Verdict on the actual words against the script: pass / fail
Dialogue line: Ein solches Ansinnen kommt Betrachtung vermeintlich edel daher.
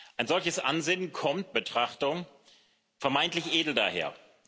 pass